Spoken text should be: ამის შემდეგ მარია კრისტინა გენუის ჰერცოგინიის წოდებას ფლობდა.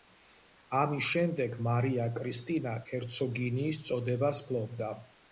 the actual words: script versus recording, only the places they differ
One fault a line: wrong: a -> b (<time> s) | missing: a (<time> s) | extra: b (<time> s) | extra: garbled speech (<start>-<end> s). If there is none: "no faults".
missing: გენუის (2.7 s)